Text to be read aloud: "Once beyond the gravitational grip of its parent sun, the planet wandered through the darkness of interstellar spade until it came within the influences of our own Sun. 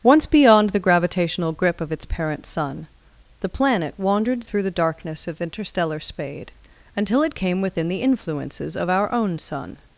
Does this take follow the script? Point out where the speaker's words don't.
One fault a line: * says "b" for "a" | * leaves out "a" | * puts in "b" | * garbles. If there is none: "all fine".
all fine